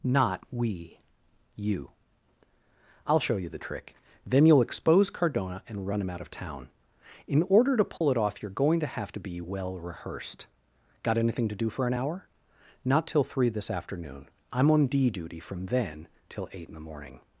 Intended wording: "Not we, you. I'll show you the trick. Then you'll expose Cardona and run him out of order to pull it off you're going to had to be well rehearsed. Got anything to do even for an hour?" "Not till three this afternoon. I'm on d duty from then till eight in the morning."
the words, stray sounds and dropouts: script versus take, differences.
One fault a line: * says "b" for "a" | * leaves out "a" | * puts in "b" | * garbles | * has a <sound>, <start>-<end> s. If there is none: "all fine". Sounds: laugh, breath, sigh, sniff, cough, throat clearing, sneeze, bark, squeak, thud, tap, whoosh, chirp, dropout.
* puts in "town In"
* has a dropout, 8.0-8.0 s
* says "have" for "had"
* leaves out "even"